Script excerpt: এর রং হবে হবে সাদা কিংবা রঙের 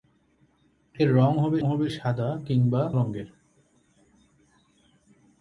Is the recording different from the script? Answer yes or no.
no